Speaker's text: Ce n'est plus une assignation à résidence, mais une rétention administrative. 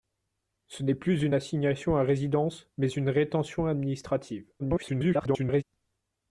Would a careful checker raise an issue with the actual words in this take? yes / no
yes